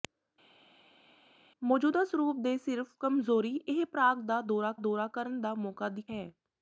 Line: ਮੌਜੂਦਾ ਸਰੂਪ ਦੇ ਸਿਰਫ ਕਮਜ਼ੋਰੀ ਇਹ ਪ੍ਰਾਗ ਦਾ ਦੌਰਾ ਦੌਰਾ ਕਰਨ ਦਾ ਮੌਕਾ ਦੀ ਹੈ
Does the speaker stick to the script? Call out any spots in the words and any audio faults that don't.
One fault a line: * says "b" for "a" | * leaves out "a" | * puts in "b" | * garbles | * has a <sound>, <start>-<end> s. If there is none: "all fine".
all fine